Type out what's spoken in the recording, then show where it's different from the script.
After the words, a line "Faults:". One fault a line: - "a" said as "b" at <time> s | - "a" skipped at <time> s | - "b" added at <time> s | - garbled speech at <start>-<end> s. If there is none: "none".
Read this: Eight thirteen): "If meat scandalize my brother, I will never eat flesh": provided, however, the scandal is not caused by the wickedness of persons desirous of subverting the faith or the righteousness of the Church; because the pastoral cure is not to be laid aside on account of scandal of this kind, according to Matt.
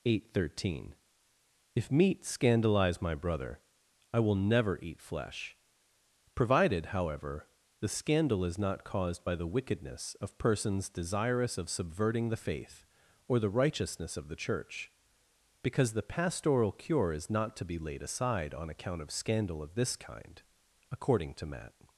Eight thirteen): "If meat scandalize my brother, I will never eat flesh": provided, however, the scandal is not caused by the wickedness of persons desirous of subverting the faith or the righteousness of the Church; because the pastoral cure is not to be laid aside on account of scandal of this kind, according to Matt.
Faults:
none